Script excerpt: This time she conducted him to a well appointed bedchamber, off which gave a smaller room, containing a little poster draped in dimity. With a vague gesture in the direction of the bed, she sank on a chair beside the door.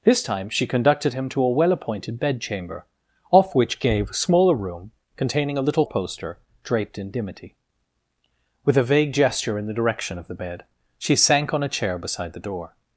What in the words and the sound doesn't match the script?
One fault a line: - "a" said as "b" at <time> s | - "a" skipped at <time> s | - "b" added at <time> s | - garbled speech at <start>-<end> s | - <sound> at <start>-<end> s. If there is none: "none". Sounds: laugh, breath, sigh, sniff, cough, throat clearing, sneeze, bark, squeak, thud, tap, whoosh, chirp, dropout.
none